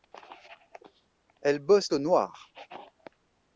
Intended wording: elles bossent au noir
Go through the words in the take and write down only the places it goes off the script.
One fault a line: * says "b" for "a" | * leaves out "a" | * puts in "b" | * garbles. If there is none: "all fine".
all fine